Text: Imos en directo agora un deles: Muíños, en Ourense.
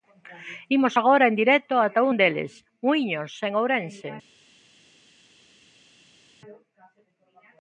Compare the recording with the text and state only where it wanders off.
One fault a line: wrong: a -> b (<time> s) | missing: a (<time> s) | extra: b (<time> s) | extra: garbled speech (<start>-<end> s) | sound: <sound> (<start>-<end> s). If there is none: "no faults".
extra: agora (1.0 s)
wrong: agora -> ata (1.9 s)